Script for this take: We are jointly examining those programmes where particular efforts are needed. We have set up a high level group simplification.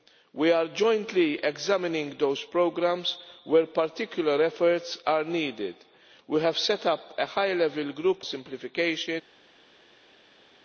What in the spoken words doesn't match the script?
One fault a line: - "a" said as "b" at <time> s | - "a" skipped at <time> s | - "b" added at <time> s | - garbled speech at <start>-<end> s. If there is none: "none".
none